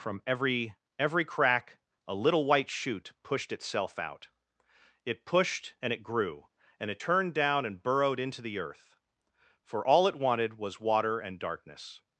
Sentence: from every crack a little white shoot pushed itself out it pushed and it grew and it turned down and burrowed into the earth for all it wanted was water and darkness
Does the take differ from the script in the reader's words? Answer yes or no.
yes